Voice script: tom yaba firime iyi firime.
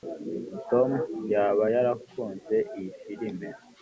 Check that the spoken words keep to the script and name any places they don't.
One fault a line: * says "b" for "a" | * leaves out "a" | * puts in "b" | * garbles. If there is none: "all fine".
* says "yarakunze" for "firime"